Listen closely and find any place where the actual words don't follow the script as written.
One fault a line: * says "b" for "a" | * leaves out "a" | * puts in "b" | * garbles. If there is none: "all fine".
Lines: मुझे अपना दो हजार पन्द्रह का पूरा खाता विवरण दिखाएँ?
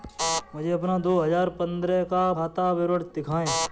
* leaves out "पूरा"